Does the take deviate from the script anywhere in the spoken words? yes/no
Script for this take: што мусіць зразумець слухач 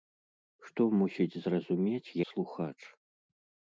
no